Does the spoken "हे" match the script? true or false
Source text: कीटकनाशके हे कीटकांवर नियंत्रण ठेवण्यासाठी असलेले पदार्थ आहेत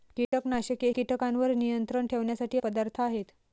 false